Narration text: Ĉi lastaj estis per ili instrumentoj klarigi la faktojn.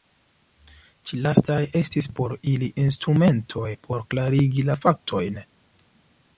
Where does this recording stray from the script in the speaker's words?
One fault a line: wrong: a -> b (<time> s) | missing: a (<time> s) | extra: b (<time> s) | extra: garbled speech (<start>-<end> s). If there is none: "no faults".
wrong: per -> por (2.2 s)
extra: por (3.9 s)